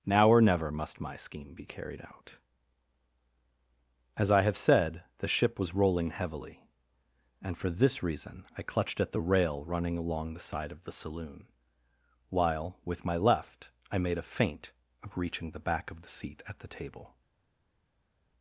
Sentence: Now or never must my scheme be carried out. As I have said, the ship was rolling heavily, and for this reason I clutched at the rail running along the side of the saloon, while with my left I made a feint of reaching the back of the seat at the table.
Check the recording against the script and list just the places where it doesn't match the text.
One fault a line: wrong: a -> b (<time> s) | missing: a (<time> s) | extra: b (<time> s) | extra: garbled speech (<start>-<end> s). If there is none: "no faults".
no faults